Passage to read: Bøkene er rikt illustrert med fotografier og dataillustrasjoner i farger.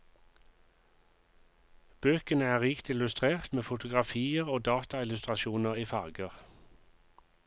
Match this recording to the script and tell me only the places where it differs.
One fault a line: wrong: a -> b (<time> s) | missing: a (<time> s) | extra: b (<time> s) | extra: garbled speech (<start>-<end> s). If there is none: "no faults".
no faults